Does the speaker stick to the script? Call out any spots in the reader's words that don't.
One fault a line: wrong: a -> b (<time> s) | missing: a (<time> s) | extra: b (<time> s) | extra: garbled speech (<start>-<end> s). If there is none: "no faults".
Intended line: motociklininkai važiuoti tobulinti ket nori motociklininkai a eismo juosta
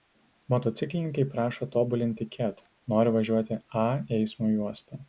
wrong: važiuoti -> prašo (1.3 s)
wrong: motociklininkai -> važiuoti (3.2 s)